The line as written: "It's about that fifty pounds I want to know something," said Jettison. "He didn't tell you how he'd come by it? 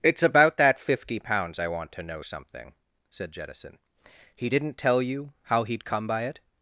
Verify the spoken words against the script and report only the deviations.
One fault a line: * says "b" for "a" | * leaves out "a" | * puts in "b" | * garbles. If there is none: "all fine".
all fine